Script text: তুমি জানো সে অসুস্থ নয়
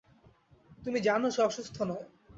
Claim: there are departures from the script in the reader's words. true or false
false